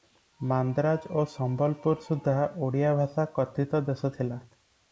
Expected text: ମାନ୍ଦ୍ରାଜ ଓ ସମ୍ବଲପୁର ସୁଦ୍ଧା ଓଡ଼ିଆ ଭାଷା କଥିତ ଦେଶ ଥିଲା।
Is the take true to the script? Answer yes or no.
yes